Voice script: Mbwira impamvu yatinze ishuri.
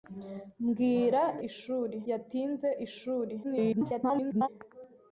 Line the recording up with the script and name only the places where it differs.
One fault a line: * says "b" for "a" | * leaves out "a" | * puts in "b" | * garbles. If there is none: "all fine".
* says "ishuri" for "impamvu"
* garbles